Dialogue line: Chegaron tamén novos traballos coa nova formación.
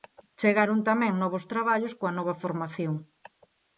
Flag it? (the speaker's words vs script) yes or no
no